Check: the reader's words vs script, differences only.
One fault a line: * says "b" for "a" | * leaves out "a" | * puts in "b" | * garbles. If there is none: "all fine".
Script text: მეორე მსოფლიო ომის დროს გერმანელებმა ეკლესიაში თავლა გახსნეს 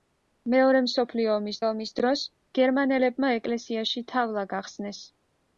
* puts in "ომის"